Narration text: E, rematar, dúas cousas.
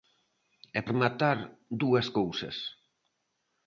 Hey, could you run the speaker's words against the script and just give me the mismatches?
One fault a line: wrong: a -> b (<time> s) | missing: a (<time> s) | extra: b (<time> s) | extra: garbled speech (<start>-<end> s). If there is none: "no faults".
no faults